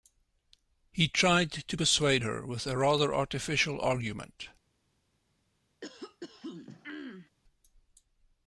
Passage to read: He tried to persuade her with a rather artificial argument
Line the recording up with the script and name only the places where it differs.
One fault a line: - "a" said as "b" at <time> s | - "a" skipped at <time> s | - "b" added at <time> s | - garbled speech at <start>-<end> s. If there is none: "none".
none